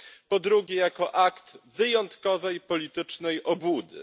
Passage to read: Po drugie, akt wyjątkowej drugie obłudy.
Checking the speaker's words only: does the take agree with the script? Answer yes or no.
no